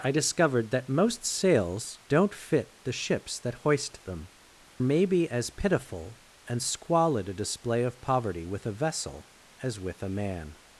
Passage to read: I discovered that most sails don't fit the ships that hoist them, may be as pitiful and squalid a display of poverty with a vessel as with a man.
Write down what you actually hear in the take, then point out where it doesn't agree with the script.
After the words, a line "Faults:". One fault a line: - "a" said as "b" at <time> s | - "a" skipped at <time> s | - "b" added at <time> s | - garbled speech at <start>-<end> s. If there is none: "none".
I discovered that most sails don't fit the ships that hoist them, may be as pitiful and squalid a display of poverty with a vessel as with a man.
Faults:
none